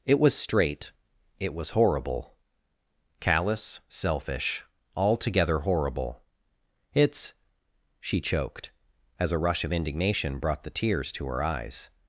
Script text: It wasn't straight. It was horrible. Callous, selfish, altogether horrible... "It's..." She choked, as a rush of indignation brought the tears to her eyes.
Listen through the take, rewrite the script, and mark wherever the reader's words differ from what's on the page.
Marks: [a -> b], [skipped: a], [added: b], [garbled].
It [wasn't -> was] straight. It was horrible. Callous, selfish, altogether horrible... "It's..." She choked, as a rush of indignation brought the tears to her eyes.